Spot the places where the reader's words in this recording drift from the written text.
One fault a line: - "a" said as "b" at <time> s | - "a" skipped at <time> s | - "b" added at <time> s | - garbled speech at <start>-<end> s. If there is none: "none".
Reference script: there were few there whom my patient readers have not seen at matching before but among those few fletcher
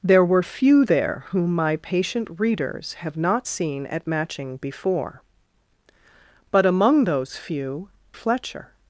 none